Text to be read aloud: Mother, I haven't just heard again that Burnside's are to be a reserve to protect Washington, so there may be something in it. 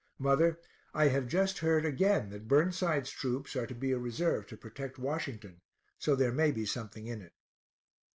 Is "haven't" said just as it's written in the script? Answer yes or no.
no